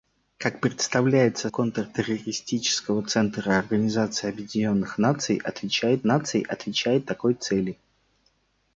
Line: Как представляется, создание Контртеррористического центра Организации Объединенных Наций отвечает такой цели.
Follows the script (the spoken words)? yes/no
no